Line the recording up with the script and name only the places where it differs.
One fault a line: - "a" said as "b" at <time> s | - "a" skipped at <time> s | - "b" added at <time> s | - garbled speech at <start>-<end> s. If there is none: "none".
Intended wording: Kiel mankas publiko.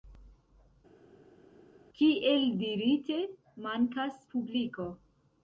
- "dirite" added at 2.6 s